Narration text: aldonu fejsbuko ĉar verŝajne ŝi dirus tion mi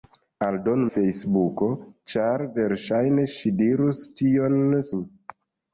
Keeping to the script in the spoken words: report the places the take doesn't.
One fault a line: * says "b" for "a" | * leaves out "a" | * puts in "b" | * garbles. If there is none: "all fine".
all fine